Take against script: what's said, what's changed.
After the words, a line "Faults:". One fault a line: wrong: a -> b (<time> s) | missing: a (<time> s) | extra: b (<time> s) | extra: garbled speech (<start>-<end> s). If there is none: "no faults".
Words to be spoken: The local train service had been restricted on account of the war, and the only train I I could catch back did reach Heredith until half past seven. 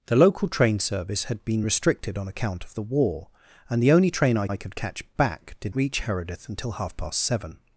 The local train service had been restricted on account of the war, and the only train I I could catch back did reach Heredith until half past seven.
Faults:
no faults